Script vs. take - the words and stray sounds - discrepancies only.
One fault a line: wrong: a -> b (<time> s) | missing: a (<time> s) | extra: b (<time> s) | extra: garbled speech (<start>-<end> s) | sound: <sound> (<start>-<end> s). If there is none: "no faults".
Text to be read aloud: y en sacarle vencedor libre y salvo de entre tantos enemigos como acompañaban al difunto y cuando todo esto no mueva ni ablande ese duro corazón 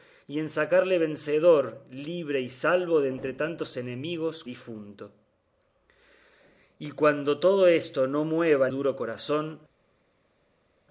missing: como acompañaban al (4.4 s)
missing: ni ablande ese (8.7 s)